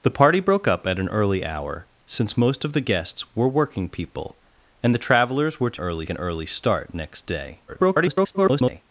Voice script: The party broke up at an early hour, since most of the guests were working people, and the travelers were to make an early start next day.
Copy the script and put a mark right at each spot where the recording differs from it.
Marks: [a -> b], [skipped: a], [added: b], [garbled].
The party broke up at an early hour, since most of the guests were working people, and the travelers were to [make -> early] an early start next day. [garbled]